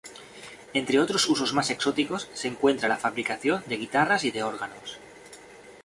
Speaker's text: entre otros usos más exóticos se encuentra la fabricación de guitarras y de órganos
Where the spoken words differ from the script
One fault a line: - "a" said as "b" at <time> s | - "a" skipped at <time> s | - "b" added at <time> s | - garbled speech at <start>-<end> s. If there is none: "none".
none